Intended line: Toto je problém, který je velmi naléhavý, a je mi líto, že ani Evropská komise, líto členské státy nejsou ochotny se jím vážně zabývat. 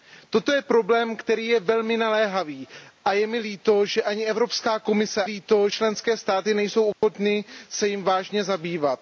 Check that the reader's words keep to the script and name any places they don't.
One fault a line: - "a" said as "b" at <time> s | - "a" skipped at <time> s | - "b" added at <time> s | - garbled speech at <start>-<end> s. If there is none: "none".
none